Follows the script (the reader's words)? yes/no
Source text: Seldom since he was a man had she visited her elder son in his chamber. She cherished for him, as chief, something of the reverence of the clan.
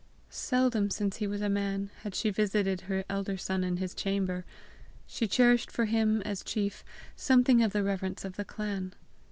yes